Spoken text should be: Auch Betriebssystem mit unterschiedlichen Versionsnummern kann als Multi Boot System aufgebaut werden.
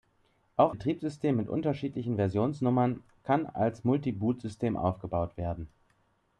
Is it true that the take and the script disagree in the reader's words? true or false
false